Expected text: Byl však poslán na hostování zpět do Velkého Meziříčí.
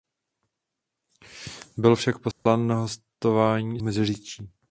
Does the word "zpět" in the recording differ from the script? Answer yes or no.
yes